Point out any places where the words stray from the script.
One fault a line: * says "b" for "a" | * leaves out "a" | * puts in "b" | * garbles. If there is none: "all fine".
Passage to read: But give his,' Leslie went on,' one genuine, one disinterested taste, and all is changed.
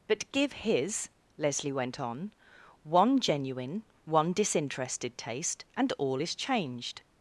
all fine